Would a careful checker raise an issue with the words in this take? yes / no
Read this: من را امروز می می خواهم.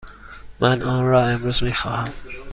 yes